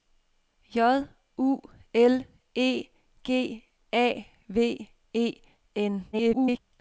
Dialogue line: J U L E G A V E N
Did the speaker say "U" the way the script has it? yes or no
yes